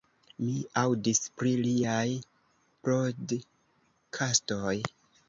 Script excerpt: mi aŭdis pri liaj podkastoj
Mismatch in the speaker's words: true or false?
false